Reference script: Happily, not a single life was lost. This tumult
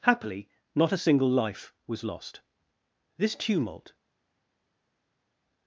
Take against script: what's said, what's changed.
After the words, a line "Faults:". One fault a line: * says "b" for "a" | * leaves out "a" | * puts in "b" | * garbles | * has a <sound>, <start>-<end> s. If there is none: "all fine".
Happily, not a single life was lost. This tumult
Faults:
all fine